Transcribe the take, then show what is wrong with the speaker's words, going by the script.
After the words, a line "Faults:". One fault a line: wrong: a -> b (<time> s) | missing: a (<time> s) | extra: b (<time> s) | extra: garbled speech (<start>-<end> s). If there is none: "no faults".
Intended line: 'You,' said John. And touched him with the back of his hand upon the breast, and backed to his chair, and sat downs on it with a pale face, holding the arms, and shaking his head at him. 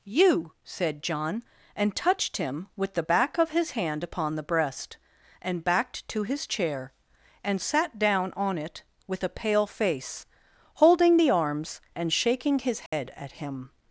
'You,' said John. And touched him with the back of his hand upon the breast, and backed to his chair, and sat down on it with a pale face, holding the arms, and shaking his head at him.
Faults:
wrong: downs -> down (8.0 s)